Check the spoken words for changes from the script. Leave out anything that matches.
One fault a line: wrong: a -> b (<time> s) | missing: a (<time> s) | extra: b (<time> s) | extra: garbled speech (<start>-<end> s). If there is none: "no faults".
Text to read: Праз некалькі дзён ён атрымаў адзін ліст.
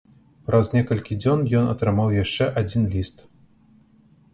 extra: яшчэ (2.2 s)